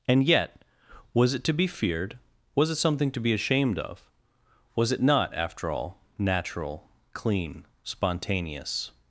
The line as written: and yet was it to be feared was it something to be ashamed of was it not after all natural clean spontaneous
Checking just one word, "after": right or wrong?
right